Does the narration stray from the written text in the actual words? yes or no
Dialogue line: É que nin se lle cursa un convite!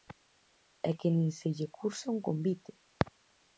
no